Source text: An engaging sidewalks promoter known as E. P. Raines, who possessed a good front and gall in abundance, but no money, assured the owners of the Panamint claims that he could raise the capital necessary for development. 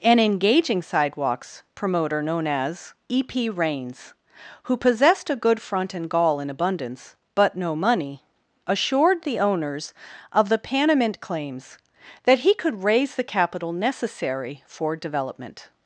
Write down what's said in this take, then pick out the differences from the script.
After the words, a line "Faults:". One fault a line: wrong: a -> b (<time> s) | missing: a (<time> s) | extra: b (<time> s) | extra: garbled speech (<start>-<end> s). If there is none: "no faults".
An engaging sidewalks promoter known as E. P. Raines, who possessed a good front and gall in abundance, but no money, assured the owners of the Panamint claims that he could raise the capital necessary for development.
Faults:
no faults